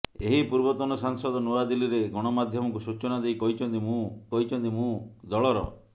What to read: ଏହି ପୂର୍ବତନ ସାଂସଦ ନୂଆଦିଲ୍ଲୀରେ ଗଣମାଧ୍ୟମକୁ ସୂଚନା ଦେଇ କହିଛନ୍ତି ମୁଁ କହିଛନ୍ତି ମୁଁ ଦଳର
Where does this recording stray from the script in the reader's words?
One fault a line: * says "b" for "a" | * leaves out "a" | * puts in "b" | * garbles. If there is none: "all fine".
all fine